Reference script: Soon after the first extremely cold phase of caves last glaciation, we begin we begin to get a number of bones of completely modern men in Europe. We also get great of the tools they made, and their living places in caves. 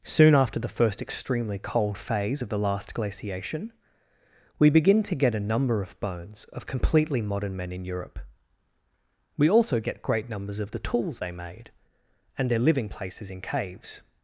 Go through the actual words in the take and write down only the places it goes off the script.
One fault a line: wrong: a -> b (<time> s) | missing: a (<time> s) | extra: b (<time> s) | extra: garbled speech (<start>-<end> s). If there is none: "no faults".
wrong: caves -> the (2.5 s)
missing: we begin (5.0 s)
extra: numbers (10.3 s)